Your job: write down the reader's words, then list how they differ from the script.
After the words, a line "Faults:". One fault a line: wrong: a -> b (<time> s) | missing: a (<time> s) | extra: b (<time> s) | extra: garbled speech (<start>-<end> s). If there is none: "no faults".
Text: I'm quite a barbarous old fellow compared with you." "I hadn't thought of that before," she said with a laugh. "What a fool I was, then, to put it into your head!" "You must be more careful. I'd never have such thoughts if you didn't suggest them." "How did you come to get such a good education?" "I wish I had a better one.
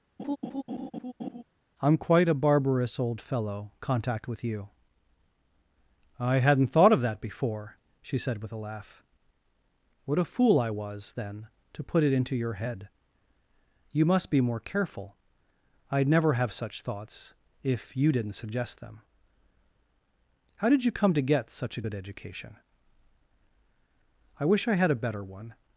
I'm quite a barbarous old fellow contact with you." "I hadn't thought of that before," she said with a laugh. "What a fool I was, then, to put it into your head!" "You must be more careful. I'd never have such thoughts if you didn't suggest them." "How did you come to get such a good education?" "I wish I had a better one.
Faults:
wrong: compared -> contact (3.8 s)